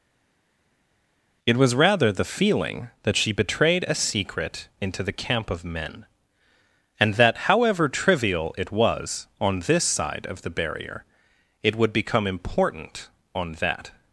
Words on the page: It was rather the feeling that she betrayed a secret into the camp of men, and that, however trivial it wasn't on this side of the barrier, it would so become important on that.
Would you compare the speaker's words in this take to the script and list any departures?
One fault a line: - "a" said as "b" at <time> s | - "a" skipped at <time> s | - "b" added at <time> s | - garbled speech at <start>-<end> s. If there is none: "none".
- "wasn't" said as "was" at 8.7 s
- "so" skipped at 11.9 s